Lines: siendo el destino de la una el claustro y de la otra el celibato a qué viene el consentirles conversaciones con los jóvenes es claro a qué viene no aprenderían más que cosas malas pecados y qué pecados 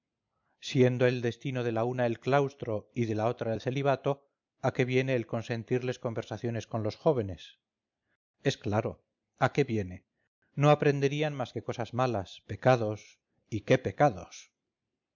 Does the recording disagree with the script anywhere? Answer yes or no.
no